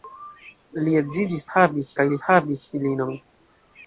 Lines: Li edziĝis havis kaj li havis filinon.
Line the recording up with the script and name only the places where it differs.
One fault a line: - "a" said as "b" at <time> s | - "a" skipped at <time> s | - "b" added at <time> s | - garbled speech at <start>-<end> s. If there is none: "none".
none